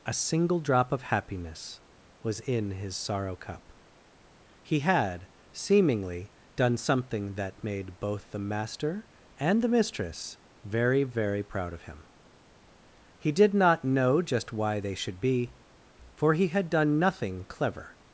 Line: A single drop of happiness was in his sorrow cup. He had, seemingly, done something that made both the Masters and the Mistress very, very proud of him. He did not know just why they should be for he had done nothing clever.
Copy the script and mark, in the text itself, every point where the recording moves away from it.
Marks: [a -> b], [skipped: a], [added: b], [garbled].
A single drop of happiness was in his sorrow cup. He had, seemingly, done something that made both the [Masters -> Master] and the Mistress very, very proud of him. He did not know just why they should be for he had done nothing clever.